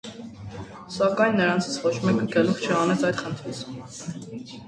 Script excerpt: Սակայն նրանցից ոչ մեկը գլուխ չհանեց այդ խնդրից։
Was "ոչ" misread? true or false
false